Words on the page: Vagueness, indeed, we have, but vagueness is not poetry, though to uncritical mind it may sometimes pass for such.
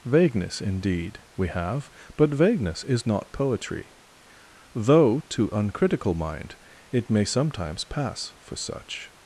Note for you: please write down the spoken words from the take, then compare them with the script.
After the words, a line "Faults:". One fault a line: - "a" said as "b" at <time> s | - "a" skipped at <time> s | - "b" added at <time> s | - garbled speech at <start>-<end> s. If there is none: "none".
Vagueness, indeed, we have, but vagueness is not poetry, though to uncritical mind it may sometimes pass for such.
Faults:
none